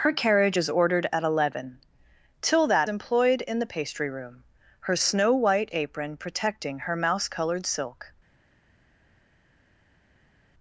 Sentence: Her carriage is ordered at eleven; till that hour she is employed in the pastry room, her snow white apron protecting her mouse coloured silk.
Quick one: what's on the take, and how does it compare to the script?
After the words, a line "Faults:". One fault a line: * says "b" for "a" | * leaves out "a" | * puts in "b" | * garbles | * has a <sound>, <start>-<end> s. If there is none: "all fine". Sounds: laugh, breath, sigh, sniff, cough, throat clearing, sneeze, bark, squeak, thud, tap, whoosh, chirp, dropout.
Her carriage is ordered at eleven; till that employed in the pastry room, her snow white apron protecting her mouse coloured silk.
Faults:
* leaves out "hour she is"